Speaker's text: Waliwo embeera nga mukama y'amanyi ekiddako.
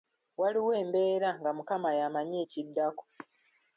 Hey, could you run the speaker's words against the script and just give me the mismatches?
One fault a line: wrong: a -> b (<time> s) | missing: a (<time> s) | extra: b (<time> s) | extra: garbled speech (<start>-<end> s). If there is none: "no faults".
no faults